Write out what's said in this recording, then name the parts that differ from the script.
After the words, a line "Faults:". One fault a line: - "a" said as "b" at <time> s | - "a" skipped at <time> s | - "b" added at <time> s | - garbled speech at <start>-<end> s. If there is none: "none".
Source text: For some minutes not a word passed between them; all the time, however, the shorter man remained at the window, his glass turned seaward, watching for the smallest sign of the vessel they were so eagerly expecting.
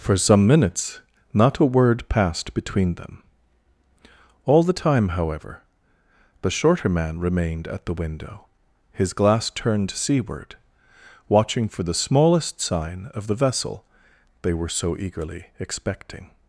For some minutes not a word passed between them; all the time, however, the shorter man remained at the window, his glass turned seaward, watching for the smallest sign of the vessel they were so eagerly expecting.
Faults:
none